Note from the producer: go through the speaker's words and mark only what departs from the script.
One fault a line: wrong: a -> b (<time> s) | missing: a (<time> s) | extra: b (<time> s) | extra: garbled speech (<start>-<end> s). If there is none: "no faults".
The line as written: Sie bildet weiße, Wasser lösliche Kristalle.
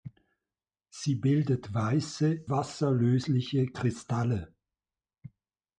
no faults